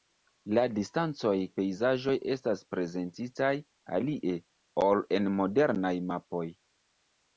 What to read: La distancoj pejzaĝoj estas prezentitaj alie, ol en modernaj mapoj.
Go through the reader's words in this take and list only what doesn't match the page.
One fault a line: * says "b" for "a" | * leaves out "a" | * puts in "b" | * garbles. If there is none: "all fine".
all fine